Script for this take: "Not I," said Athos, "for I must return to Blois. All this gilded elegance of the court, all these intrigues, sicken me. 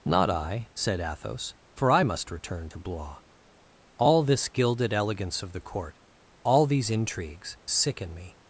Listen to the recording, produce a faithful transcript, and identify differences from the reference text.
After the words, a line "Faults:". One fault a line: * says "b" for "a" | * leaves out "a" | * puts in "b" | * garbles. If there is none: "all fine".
"Not I," said Athos, "for I must return to Blois. All this gilded elegance of the court, all these intrigues, sicken me.
Faults:
all fine